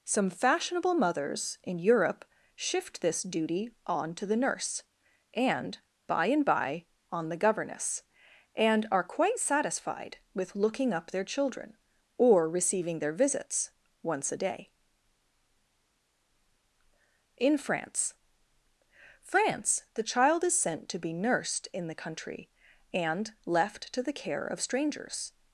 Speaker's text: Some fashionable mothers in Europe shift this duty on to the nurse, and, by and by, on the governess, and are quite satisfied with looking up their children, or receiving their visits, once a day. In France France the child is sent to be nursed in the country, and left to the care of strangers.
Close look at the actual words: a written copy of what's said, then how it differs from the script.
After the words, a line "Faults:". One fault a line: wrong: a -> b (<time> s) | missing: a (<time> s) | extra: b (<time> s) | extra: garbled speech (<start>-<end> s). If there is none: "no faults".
Some fashionable mothers in Europe shift this duty on to the nurse, and, by and by, on the governess, and are quite satisfied with looking up their children, or receiving their visits, once a day. In France France the child is sent to be nursed in the country, and left to the care of strangers.
Faults:
no faults